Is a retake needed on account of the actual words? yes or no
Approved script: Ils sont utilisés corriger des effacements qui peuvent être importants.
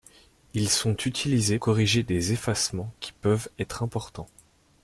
no